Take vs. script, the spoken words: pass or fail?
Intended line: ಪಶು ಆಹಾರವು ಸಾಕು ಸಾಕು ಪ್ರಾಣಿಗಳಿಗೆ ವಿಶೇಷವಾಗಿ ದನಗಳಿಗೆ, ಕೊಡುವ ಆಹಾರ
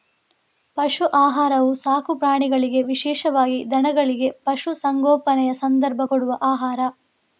fail